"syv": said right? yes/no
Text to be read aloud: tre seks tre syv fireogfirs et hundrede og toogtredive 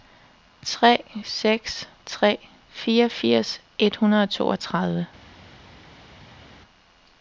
no